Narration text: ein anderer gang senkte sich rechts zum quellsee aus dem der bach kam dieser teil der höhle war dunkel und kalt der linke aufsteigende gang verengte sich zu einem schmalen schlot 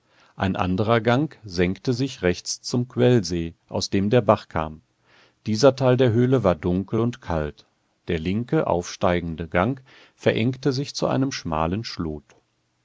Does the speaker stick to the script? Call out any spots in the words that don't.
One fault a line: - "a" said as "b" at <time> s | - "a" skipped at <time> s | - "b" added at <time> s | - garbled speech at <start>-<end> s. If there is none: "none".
none